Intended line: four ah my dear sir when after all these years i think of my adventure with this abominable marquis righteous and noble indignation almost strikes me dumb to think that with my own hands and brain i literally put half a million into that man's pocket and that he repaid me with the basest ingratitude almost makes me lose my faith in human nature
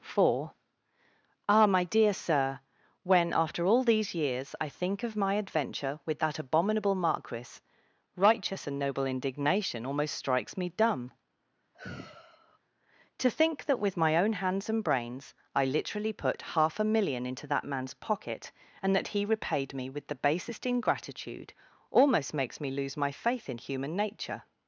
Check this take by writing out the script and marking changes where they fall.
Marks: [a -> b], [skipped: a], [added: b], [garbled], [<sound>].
four ah my dear sir when after all these years i think of my adventure with [this -> that] abominable marquis righteous and noble indignation almost strikes me dumb [sigh] to think that with my own hands and [brain -> brains] i literally put half a million into that man's pocket and that he repaid me with the basest ingratitude almost makes me lose my faith in human nature